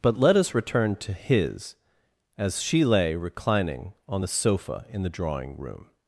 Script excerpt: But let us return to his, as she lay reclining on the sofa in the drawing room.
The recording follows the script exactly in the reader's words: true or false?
true